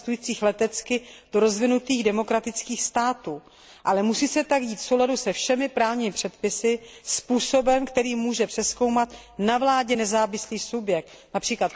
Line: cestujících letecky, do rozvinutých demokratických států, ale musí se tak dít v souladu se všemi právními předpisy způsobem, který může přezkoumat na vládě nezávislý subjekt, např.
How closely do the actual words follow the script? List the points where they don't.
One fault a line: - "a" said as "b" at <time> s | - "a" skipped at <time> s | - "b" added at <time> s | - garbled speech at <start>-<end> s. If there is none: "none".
none